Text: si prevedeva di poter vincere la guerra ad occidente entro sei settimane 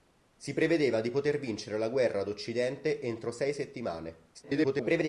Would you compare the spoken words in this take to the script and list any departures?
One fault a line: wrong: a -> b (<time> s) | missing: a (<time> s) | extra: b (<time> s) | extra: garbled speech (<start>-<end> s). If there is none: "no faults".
extra: garbled speech (4.3-5.1 s)